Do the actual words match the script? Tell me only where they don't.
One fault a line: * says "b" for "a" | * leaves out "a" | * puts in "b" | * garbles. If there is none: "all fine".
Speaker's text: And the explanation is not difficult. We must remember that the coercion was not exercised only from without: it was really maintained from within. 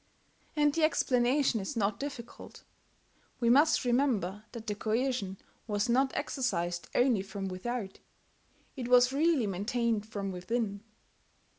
all fine